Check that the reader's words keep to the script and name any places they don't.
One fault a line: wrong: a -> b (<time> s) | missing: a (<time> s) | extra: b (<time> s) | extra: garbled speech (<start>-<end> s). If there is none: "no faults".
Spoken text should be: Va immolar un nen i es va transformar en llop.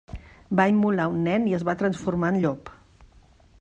no faults